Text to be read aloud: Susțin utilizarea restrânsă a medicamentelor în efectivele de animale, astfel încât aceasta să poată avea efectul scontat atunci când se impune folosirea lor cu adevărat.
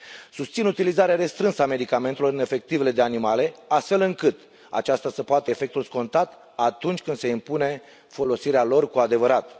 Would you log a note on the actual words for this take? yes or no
yes